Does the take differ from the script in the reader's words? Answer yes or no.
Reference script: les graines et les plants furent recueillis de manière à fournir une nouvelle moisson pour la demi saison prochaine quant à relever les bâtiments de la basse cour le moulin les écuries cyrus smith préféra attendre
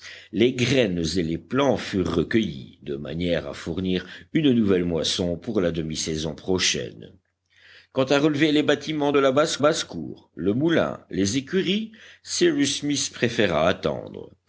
yes